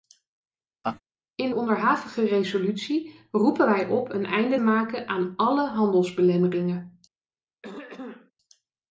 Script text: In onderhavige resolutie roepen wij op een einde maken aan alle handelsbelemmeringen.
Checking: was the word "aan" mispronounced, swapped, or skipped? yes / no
no